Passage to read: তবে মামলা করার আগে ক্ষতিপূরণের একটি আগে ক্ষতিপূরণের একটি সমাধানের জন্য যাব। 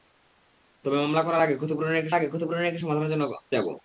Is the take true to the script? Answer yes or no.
yes